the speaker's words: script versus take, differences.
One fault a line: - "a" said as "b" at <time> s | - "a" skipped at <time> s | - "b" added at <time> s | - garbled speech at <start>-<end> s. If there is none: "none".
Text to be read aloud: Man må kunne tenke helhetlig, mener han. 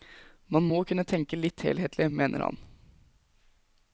- "litt" added at 1.4 s